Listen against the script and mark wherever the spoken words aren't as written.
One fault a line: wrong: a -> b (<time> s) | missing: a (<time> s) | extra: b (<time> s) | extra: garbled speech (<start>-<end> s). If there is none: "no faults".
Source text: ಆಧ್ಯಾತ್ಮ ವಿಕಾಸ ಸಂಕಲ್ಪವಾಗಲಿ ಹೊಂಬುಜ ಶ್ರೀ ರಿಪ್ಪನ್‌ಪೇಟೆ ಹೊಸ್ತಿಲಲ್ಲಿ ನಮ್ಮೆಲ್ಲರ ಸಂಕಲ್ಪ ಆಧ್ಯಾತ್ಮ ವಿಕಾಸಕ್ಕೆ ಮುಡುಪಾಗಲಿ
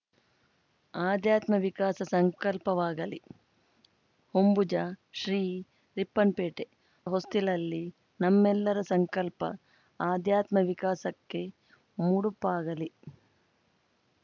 no faults